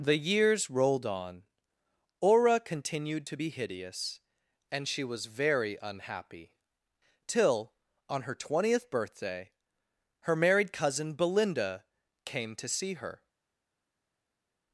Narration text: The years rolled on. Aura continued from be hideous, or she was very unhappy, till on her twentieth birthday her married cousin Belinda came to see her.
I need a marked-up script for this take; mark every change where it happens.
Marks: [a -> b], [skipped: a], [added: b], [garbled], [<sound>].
The years rolled on. Aura continued [from -> to] be hideous, [or -> and] she was very unhappy, till on her twentieth birthday her married cousin Belinda came to see her.